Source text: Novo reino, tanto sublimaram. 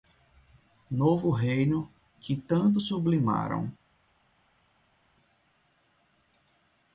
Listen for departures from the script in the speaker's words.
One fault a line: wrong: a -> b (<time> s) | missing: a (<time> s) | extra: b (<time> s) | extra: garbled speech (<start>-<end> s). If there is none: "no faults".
extra: que (2.2 s)